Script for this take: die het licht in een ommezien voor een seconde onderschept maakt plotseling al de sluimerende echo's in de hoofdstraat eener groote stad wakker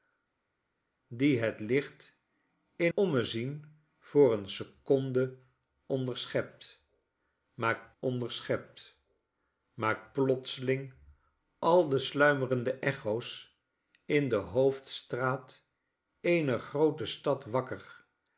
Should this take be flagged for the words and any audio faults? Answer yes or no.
yes